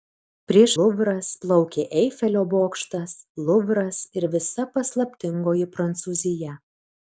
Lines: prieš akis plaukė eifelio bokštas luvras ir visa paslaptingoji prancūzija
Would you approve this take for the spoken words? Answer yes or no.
no